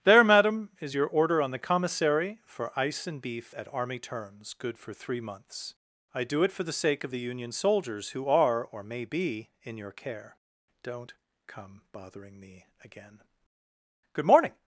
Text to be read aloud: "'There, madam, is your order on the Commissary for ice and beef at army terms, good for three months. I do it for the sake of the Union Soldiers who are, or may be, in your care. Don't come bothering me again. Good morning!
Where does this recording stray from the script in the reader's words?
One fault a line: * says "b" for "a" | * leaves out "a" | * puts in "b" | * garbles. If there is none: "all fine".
all fine